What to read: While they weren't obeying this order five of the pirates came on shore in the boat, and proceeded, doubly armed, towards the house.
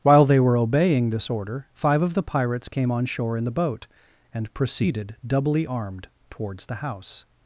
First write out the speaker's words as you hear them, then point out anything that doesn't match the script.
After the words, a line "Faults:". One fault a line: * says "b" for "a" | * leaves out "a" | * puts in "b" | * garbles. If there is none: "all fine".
While they were obeying this order five of the pirates came on shore in the boat, and proceeded, doubly armed, towards the house.
Faults:
* says "were" for "weren't"